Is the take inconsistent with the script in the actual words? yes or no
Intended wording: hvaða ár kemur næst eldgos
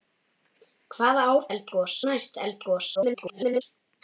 yes